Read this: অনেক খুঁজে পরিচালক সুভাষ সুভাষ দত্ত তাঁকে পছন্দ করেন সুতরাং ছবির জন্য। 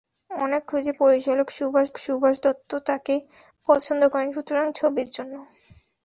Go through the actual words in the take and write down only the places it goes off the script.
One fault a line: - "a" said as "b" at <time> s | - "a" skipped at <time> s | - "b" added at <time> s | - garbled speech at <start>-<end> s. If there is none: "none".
none